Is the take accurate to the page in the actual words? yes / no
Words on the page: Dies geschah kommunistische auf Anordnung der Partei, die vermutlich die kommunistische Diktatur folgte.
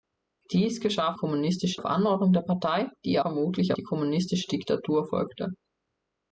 yes